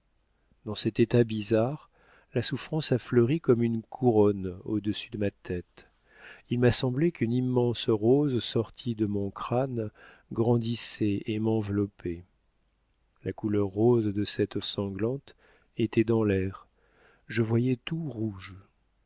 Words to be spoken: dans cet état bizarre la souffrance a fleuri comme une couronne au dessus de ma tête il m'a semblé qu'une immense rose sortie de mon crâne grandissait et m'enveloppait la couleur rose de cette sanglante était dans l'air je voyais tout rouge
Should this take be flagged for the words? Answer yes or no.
no